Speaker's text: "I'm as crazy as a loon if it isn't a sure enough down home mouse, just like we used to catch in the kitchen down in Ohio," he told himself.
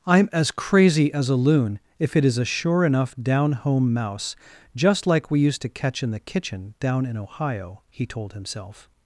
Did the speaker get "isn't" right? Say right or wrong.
wrong